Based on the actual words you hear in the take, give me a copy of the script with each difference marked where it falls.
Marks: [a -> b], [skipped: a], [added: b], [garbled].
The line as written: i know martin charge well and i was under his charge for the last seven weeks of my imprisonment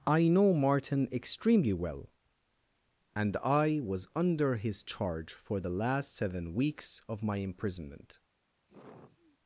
i know martin [charge -> extremely] well and i was under his charge for the last seven weeks of my imprisonment